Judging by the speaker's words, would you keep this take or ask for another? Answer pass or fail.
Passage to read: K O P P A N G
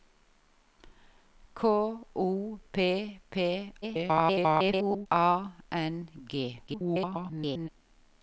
fail